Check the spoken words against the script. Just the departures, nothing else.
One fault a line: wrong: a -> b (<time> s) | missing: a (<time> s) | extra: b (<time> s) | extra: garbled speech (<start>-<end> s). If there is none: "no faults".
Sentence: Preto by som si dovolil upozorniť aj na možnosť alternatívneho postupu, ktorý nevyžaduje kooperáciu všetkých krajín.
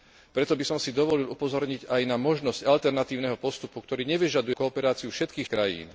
no faults